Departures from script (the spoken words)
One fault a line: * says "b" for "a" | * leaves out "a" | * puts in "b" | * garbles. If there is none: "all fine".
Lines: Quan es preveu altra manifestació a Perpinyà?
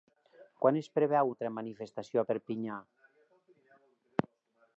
all fine